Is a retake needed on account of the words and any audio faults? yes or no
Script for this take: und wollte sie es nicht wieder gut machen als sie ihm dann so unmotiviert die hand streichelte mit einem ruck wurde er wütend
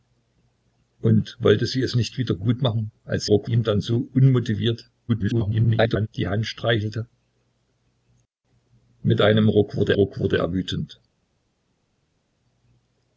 yes